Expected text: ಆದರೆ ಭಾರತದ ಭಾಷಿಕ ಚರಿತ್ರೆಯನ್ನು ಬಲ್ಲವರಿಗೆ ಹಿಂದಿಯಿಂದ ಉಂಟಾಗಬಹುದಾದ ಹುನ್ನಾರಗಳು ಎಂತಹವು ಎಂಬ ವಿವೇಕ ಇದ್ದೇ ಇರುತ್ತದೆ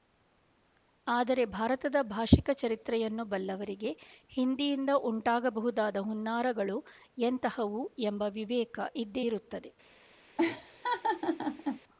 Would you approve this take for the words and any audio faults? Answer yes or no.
no